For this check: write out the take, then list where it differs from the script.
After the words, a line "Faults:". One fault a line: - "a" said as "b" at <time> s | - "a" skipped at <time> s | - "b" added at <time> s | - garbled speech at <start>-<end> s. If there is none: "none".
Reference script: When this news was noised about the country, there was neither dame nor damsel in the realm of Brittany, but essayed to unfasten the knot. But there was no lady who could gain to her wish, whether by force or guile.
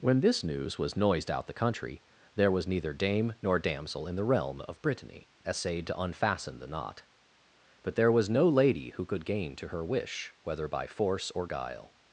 When this news was noised out the country, there was neither dame nor damsel in the realm of Brittany, essayed to unfasten the knot. But there was no lady who could gain to her wish, whether by force or guile.
Faults:
- "about" said as "out" at 1.3 s
- "but" skipped at 5.3 s